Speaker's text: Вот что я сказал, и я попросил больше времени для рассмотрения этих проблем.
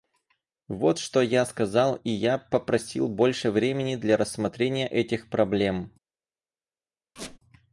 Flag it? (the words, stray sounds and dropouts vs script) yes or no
yes